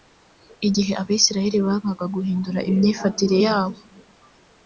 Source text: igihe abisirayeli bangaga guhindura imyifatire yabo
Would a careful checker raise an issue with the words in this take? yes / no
no